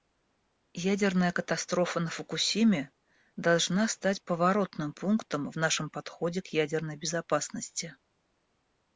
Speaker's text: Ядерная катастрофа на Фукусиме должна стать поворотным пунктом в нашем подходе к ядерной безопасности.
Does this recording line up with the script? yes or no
yes